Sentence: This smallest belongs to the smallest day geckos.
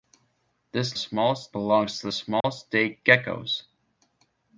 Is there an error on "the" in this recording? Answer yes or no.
no